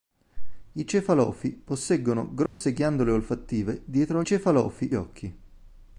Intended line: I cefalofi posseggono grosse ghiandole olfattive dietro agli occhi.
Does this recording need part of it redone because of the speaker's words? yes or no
yes